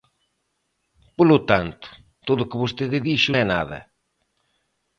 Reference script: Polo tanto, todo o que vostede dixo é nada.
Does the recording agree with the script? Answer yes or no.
yes